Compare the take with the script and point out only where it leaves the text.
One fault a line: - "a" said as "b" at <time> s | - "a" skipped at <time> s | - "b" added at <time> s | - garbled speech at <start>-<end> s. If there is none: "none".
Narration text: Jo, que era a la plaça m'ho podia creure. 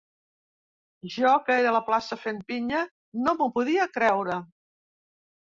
- "fent pinya no" added at 2.3 s